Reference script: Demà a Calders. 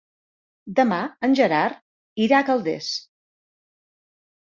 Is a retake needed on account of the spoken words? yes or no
yes